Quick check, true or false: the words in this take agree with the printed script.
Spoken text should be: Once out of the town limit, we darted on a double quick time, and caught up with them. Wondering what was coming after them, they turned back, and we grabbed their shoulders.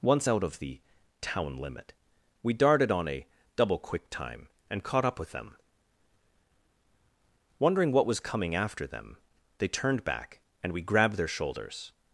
true